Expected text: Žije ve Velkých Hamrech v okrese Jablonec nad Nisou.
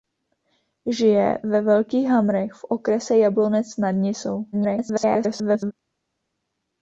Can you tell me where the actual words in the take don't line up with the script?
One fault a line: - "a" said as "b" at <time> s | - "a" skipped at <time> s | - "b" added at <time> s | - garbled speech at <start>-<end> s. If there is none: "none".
- garbled speech at 4.5-5.7 s